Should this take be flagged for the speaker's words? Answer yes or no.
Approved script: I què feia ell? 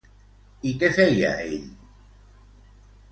no